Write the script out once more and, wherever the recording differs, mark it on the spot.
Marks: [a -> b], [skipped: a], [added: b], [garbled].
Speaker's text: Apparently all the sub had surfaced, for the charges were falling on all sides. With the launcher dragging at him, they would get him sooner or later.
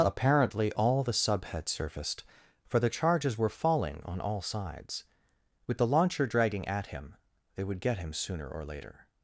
Apparently all the sub had surfaced, for the charges were falling on all sides. With the launcher dragging at him, they would get him sooner or later.